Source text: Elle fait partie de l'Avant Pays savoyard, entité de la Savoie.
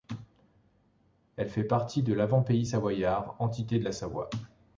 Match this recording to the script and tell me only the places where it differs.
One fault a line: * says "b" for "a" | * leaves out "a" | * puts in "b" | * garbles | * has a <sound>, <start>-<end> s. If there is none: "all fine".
all fine